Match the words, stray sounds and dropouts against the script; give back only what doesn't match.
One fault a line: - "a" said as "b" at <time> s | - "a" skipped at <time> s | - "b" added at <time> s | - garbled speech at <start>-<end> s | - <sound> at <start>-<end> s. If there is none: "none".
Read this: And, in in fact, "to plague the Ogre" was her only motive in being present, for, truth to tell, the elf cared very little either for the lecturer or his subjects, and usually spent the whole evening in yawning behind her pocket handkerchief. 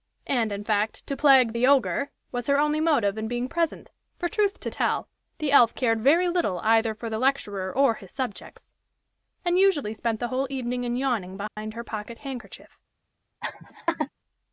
- "in" skipped at 0.6 s
- dropout at 11.5-11.6 s
- laugh at 13.4-14.1 s